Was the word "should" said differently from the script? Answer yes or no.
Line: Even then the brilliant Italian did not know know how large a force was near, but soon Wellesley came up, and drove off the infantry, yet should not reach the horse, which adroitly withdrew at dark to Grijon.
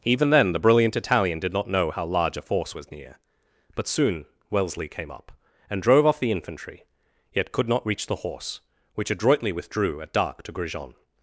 yes